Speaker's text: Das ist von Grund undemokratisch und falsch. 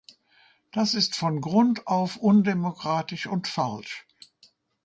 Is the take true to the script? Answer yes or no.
no